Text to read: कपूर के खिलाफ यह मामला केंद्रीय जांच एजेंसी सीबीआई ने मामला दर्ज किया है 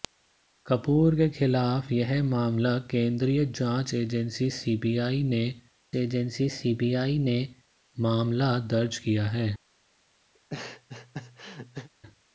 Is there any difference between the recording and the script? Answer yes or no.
yes